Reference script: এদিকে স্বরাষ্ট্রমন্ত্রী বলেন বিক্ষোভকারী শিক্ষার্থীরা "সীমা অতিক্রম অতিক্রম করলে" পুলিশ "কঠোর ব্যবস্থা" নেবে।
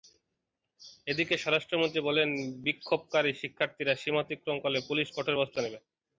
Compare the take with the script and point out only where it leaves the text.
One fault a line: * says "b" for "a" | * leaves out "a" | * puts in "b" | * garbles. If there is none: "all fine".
* leaves out "অতিক্রম"